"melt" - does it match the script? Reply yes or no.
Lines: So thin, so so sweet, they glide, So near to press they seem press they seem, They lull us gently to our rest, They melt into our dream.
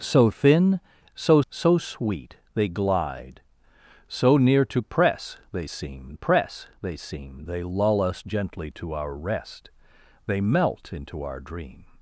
yes